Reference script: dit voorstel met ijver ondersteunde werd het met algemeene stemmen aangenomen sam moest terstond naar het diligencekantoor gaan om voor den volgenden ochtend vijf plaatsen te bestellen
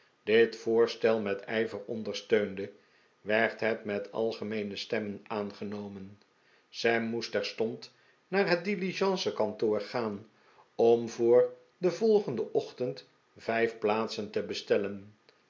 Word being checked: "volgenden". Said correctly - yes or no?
yes